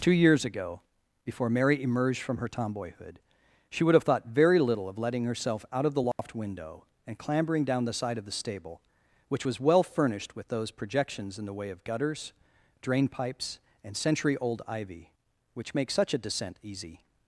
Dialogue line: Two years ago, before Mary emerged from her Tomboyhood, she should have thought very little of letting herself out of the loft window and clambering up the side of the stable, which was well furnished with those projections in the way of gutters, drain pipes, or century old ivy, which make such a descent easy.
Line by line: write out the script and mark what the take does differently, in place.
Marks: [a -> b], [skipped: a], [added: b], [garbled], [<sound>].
Two years ago, before Mary emerged from her Tomboyhood, she [should -> would] have thought very little of letting herself out of the loft [dropout] window and clambering [up -> down] the side of the stable, which was well furnished with those projections in the way of gutters, drain pipes, [or -> and] century old ivy, which make such a descent easy.